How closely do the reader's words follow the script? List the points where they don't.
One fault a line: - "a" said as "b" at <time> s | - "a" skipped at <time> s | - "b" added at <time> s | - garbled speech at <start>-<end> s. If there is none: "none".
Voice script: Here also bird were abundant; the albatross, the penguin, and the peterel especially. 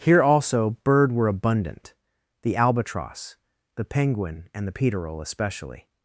none